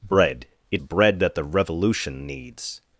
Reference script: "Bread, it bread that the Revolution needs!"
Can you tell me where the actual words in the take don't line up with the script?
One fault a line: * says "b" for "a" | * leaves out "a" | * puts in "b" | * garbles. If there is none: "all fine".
all fine